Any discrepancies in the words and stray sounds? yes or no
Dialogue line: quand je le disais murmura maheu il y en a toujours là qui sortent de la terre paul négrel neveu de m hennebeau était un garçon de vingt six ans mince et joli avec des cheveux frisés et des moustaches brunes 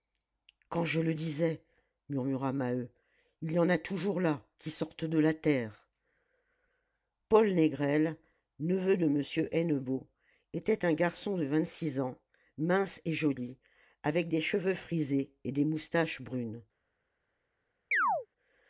yes